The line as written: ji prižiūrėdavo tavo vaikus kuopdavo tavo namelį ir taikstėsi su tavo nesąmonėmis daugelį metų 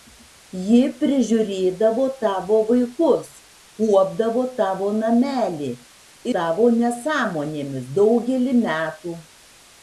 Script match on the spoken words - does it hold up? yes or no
no